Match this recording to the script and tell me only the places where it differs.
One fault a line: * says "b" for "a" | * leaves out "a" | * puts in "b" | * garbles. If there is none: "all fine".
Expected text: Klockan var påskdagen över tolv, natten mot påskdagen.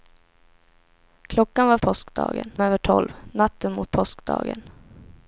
all fine